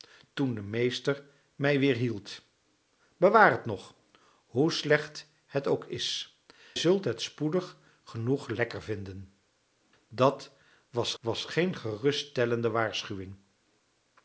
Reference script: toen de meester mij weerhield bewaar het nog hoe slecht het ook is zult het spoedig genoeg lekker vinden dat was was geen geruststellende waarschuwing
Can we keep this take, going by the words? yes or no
yes